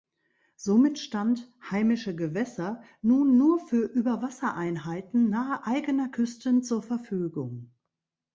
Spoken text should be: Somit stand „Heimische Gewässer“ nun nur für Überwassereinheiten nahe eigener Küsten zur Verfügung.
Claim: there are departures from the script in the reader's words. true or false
false